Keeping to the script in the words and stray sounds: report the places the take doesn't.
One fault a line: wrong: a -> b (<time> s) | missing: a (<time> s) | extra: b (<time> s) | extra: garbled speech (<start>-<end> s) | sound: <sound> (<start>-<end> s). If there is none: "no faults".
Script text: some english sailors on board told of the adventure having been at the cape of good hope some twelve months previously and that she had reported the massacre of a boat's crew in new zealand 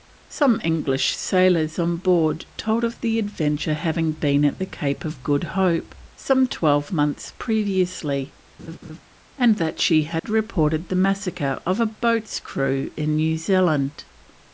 sound: laugh (8.6-9.0 s)
sound: dropout (10.2-10.2 s)